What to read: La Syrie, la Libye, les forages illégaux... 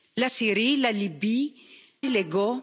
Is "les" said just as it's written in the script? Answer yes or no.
no